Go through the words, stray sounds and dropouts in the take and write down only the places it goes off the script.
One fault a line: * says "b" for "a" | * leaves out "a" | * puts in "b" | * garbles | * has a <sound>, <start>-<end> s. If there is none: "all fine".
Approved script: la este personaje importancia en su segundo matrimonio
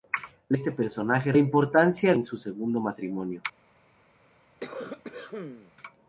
* has a cough, 4.6-5.7 s